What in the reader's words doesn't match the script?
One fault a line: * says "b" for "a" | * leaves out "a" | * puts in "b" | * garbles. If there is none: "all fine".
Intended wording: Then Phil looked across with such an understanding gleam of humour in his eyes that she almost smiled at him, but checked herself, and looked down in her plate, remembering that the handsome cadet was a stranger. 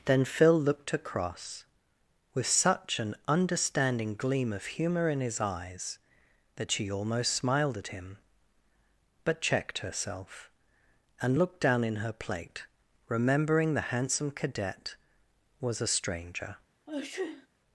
* leaves out "that"